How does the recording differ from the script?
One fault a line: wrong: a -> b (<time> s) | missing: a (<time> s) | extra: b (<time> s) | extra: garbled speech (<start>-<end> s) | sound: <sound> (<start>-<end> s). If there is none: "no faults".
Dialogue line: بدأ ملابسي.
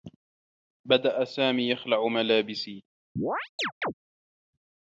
extra: سامي يخلع (1.2 s)
sound: chirp (3.2-3.9 s)